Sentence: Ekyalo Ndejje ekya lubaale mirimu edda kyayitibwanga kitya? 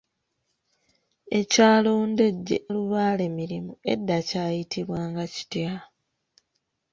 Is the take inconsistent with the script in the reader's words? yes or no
yes